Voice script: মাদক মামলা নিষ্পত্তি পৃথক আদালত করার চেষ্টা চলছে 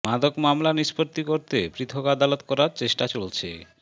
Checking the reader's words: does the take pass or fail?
fail